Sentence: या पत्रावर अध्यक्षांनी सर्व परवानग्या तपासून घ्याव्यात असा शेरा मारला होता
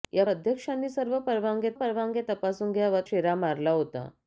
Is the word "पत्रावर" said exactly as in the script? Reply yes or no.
no